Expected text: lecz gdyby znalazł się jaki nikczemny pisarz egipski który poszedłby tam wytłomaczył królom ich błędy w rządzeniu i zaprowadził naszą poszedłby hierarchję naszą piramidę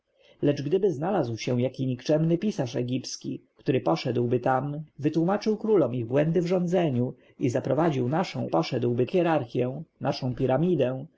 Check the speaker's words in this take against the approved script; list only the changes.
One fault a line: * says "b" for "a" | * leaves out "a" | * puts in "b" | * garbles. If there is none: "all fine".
all fine